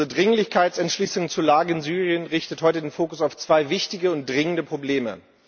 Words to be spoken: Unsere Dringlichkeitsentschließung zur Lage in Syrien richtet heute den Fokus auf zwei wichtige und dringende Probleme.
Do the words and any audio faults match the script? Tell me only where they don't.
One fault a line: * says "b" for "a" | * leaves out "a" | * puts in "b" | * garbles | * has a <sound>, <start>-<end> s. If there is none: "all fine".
all fine